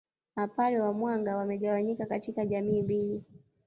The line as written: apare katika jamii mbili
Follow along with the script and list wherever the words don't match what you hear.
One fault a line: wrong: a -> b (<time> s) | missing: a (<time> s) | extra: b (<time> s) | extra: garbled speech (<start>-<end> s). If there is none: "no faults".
extra: wa mwanga wamegawanyika (0.8 s)